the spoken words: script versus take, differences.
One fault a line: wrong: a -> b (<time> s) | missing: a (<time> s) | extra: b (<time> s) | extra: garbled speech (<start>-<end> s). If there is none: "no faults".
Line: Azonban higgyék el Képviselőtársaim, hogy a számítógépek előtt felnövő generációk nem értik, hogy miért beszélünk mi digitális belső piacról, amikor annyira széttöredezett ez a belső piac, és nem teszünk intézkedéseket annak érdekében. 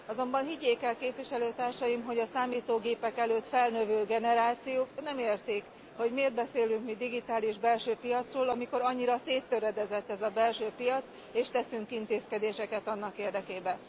missing: nem (11.5 s)